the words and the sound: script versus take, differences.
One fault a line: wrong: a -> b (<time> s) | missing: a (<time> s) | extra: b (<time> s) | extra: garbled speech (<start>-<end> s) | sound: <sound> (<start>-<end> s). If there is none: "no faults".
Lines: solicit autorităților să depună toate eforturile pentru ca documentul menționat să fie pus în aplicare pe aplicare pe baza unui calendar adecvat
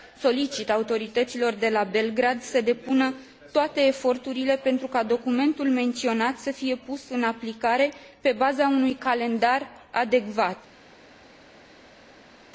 extra: de la belgrad (1.5 s)
missing: aplicare pe (8.3 s)